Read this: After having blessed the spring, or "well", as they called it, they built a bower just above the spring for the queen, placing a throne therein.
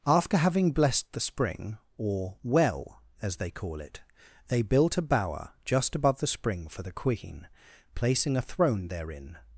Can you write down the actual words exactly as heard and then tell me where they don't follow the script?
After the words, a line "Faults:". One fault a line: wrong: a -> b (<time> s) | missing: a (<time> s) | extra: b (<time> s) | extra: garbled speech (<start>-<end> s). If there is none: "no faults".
After having blessed the spring, or "well", as they call it, they built a bower just above the spring for the queen, placing a throne therein.
Faults:
wrong: called -> call (3.5 s)